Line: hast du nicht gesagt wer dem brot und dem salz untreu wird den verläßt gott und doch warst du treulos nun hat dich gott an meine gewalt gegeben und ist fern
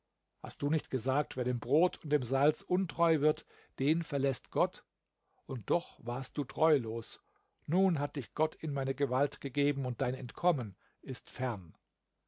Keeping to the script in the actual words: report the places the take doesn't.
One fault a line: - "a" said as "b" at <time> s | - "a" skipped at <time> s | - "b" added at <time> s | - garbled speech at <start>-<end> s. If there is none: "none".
- "an" said as "in" at 8.6 s
- "dein entkommen" added at 10.0 s